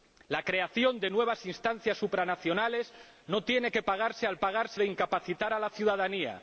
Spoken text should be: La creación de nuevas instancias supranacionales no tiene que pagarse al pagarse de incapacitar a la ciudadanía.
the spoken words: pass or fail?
pass